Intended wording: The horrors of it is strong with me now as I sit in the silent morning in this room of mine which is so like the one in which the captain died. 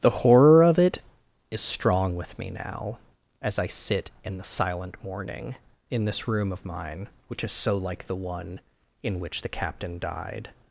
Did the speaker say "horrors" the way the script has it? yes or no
no